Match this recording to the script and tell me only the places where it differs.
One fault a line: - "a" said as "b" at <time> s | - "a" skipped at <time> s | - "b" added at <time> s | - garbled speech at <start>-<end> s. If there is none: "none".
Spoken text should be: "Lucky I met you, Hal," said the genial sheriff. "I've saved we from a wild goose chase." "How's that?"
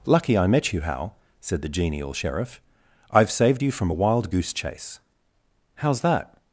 - "we" said as "you" at 3.6 s